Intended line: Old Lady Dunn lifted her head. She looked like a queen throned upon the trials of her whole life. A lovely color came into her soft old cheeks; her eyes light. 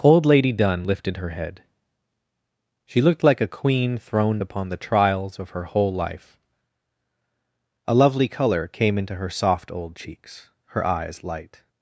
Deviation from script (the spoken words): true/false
false